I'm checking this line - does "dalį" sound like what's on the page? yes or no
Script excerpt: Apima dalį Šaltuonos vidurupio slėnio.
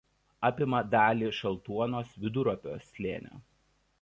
yes